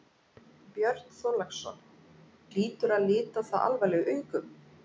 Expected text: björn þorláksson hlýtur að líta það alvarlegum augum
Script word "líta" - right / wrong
right